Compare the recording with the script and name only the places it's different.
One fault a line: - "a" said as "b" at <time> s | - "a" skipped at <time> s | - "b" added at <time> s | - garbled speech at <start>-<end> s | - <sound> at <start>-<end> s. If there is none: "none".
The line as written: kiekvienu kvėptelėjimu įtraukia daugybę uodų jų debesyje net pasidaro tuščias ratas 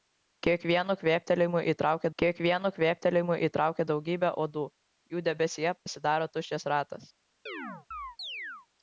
- "kiekvienu kvėptelėjimu įtraukia" added at 2.2 s
- "net" skipped at 5.8 s
- chirp at 7.5-8.7 s